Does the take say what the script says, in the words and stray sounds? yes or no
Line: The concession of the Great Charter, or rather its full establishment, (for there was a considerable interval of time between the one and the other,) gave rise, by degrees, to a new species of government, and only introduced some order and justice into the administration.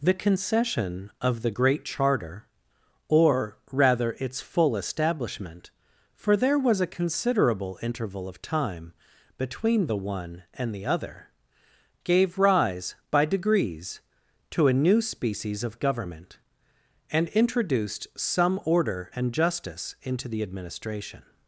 no